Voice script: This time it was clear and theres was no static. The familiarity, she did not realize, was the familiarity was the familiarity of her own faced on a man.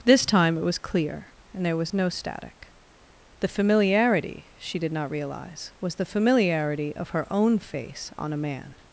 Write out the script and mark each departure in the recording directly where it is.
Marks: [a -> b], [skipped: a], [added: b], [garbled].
This time it was clear and [theres -> there] was no static. The familiarity, she did not realize, was the familiarity [skipped: was the familiarity] of her own [faced -> face] on a man.